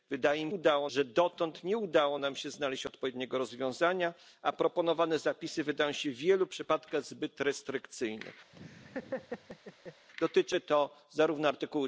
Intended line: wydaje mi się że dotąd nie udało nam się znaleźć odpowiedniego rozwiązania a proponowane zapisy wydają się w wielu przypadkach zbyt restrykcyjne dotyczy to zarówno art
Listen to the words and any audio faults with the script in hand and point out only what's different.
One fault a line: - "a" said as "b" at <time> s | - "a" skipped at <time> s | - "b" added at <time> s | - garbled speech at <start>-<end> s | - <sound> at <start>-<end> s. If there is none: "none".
- "się" said as "udało" at 0.5 s
- laugh at 8.5-10.1 s